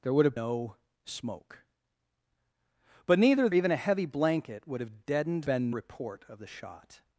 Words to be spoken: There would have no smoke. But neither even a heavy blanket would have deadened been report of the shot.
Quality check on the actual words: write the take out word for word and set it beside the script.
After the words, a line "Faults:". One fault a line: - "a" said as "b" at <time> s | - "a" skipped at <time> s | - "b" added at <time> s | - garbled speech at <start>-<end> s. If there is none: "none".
There would have no smoke. But neither even a heavy blanket would have deadened been report of the shot.
Faults:
none